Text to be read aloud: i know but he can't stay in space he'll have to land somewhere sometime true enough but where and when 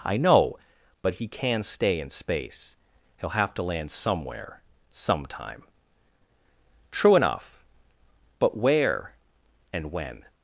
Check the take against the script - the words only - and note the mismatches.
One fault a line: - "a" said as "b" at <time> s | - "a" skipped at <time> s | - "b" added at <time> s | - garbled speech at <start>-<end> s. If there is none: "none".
- "can't" said as "can" at 1.3 s